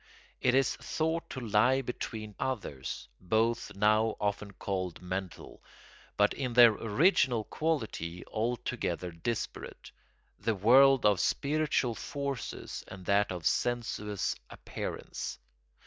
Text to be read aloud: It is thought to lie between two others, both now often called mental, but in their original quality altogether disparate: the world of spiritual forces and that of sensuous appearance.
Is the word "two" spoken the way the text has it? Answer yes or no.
no